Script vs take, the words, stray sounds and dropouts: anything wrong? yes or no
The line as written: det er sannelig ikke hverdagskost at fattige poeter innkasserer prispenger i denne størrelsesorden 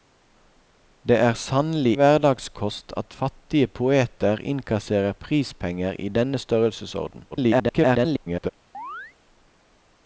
yes